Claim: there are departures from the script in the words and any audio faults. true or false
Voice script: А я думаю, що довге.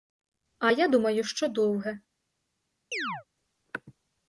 true